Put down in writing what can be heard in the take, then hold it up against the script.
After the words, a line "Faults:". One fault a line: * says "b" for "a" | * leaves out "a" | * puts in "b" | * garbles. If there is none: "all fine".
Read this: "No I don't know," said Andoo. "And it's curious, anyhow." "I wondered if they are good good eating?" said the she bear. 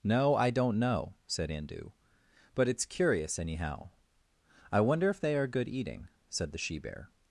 "No I don't know," said Andoo. "But it's curious, anyhow." "I wonder if they are good eating?" said the she bear.
Faults:
* says "But" for "And"
* says "wonder" for "wondered"
* leaves out "good"